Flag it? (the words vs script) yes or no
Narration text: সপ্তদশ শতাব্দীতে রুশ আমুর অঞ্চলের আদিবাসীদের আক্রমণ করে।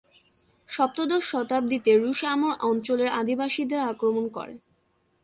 no